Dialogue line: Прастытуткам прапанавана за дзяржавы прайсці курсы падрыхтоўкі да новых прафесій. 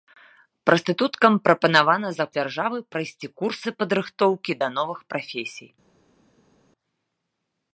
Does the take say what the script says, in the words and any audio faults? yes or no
yes